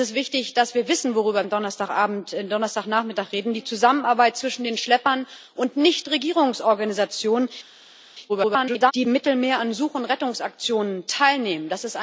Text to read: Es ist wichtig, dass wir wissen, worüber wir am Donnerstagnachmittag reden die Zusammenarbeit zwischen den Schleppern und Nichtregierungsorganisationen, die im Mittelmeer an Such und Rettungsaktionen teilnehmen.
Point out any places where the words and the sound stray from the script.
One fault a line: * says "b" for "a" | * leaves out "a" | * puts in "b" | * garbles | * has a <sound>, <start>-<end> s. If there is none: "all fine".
* leaves out "wir"
* garbles